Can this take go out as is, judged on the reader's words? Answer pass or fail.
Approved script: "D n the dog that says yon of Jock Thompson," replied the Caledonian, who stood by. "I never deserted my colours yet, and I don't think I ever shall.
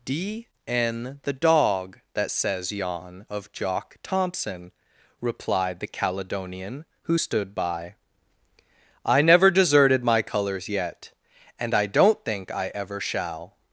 pass